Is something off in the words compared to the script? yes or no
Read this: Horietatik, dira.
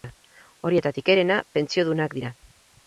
yes